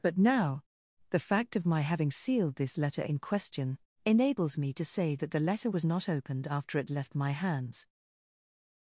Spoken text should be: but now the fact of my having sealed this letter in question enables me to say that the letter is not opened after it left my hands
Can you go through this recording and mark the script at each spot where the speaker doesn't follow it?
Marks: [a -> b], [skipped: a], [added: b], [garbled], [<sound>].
but now the fact of my having sealed this letter in question enables me to say that the letter [is -> was] not opened after it left my hands